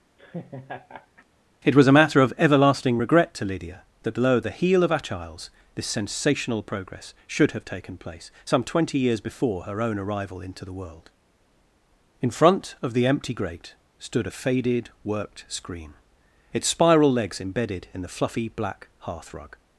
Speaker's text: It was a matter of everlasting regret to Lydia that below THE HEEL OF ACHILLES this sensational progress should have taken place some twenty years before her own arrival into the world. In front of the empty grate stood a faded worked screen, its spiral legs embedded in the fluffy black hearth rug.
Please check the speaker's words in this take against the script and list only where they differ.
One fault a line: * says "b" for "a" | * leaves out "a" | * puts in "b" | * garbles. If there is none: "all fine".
all fine